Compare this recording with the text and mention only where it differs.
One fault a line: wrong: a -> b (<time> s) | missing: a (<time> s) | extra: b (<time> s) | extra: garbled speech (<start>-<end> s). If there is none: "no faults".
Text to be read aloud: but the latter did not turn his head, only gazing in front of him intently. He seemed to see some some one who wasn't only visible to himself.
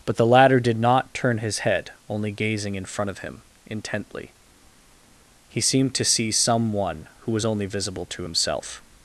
missing: some (6.7 s)
wrong: wasn't -> was (7.3 s)